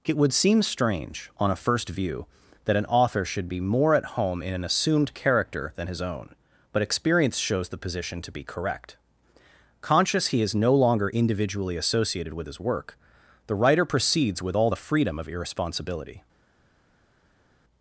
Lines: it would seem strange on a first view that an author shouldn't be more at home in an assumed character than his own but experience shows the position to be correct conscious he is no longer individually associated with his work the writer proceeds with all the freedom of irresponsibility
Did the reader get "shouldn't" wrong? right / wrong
wrong